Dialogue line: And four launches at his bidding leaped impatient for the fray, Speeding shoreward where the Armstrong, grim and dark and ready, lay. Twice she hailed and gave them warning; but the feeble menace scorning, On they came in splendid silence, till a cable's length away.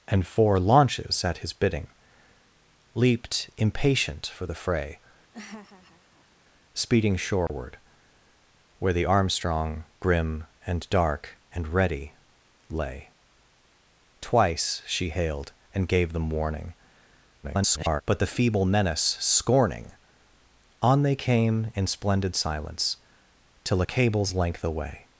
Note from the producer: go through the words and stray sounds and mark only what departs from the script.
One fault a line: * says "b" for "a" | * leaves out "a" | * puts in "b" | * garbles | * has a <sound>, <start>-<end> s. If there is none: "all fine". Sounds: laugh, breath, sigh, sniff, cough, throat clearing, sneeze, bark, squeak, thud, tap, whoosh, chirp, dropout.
* has a laugh, 5.3-6.4 s
* has a dropout, 7.5-7.5 s
* garbles